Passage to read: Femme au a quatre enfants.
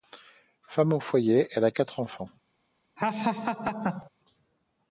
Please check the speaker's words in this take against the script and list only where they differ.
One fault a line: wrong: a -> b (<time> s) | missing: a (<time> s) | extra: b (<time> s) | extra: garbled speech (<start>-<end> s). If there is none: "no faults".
extra: foyer elle (1.0 s)